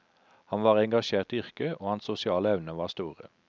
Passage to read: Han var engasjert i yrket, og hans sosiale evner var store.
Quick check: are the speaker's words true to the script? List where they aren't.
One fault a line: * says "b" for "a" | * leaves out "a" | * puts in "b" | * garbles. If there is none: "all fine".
all fine